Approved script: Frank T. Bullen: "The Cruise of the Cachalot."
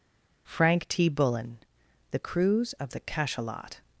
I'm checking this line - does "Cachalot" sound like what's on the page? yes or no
yes